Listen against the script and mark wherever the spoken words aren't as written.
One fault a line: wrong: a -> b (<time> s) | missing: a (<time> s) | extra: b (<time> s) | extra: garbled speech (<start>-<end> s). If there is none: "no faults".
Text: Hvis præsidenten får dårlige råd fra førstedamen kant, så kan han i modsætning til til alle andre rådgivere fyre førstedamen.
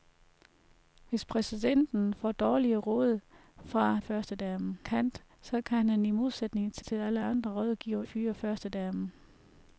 no faults